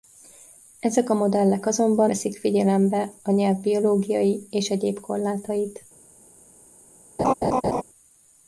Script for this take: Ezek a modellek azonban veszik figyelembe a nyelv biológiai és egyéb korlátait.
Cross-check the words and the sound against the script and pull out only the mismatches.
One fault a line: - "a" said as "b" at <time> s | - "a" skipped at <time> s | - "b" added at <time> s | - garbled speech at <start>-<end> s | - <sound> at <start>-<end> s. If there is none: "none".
- laugh at 7.2-7.8 s